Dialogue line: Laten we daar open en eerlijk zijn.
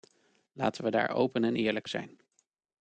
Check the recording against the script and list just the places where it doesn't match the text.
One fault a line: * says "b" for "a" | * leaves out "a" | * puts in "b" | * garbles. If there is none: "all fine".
all fine